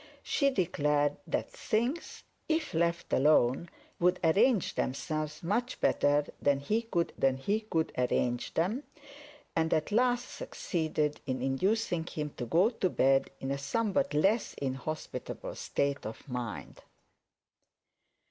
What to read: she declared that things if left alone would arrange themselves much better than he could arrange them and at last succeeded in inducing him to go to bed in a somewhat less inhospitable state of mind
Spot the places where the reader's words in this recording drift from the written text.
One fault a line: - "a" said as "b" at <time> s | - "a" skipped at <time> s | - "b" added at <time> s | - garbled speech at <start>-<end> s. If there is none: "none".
- "than he could" added at 7.2 s